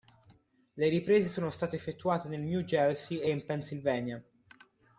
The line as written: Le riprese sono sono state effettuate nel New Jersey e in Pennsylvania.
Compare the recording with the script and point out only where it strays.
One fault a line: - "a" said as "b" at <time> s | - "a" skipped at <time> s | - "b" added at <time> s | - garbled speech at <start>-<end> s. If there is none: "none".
- "sono" skipped at 1.5 s